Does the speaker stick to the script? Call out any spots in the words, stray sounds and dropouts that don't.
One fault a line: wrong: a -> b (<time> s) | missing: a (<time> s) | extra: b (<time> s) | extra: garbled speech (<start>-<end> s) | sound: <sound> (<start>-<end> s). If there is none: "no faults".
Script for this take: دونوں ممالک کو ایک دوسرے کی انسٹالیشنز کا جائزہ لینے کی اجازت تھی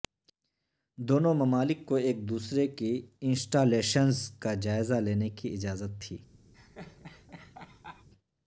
sound: laugh (6.5-8.1 s)